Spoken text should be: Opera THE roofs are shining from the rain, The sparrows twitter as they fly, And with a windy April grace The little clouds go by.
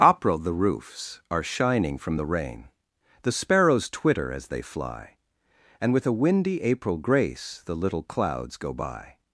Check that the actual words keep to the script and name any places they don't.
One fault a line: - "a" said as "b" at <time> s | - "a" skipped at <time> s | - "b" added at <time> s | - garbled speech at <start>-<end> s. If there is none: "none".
none